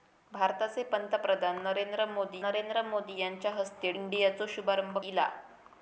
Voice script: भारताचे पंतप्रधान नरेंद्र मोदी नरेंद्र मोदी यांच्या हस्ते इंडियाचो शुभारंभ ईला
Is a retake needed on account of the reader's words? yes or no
no